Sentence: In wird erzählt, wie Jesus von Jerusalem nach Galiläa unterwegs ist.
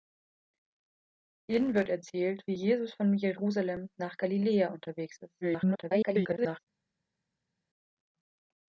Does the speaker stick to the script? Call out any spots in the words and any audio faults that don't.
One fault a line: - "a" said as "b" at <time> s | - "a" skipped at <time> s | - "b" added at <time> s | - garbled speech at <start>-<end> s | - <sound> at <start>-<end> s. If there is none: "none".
- garbled speech at 5.4-6.6 s